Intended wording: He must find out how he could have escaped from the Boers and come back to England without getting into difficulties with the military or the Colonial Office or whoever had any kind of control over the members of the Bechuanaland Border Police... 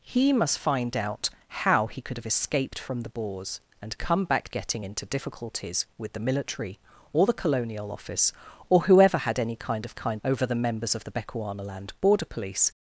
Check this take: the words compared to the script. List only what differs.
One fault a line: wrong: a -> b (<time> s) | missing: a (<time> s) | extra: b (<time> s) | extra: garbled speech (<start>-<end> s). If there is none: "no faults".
missing: to England without (4.5 s)
wrong: control -> kind (9.9 s)